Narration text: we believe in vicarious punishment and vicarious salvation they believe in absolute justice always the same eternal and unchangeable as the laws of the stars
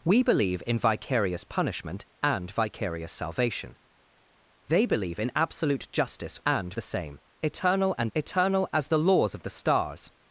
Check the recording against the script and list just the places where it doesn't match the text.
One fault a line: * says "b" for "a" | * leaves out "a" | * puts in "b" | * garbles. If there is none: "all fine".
* says "and" for "always"
* says "eternal" for "unchangeable"